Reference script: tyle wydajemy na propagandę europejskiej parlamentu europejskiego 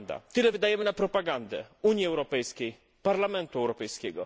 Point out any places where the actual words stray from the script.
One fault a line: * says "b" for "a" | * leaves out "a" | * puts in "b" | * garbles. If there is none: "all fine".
* puts in "unii"